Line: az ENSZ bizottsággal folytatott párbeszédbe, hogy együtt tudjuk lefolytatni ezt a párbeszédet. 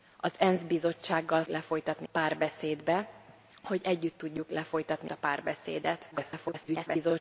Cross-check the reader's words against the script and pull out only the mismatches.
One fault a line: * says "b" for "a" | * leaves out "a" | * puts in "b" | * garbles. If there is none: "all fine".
* says "lefolytatni" for "folytatott"
* leaves out "ezt"
* garbles